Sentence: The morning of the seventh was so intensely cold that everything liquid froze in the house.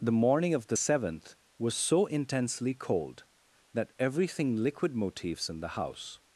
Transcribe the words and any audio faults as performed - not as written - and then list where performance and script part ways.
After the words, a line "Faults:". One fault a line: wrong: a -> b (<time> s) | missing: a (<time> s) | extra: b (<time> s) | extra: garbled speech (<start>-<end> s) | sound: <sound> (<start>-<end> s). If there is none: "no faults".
The morning of the seventh was so intensely cold that everything liquid motifs in the house.
Faults:
wrong: froze -> motifs (4.9 s)